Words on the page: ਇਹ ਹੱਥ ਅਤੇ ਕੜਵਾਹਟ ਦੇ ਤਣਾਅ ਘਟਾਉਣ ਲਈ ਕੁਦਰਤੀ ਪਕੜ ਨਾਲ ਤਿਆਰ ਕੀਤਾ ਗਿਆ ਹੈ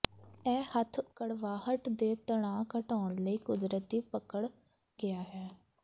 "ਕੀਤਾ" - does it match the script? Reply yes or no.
no